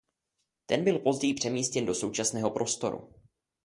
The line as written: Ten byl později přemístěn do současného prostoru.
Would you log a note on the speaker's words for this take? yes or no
no